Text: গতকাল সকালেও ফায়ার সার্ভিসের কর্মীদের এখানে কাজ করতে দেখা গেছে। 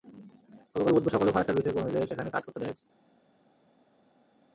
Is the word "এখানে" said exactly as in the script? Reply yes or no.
no